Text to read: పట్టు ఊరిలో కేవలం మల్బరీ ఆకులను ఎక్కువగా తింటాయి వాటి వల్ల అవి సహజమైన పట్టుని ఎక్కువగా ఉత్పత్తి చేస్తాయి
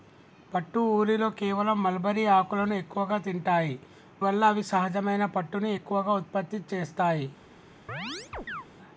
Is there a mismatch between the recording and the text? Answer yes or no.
yes